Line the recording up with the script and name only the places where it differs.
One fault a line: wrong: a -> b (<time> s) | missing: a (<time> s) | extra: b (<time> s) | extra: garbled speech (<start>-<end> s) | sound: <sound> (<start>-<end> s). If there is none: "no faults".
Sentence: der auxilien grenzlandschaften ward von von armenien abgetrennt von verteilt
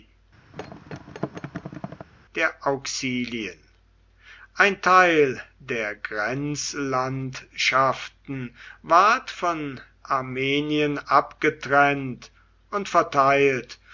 sound: thud (0.5-2.1 s)
extra: ein teil der (4.5 s)
missing: von (9.8 s)
wrong: von -> und (12.7 s)